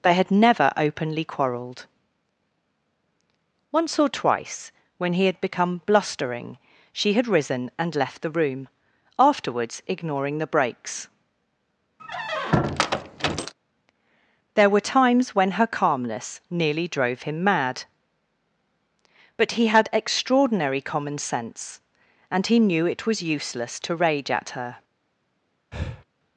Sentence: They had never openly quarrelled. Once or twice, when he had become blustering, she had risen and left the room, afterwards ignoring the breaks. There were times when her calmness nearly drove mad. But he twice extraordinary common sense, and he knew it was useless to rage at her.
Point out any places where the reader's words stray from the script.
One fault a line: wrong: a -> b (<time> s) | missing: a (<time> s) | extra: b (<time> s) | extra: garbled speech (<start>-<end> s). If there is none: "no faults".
extra: him (17.2 s)
wrong: twice -> had (19.7 s)